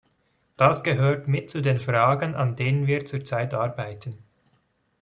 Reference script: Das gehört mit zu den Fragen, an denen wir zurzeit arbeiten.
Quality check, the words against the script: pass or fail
pass